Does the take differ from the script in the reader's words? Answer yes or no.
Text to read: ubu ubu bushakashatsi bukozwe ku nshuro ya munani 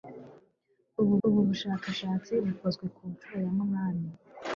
no